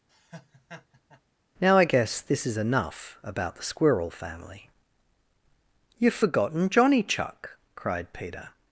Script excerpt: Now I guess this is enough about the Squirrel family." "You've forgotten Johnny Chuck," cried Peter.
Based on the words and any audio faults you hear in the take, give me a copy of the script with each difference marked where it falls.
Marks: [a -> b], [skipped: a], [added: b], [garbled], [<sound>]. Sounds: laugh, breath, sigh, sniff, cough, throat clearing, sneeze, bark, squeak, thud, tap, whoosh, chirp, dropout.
[laugh] Now I guess this is enough about the Squirrel family." "You've forgotten Johnny Chuck," cried Peter.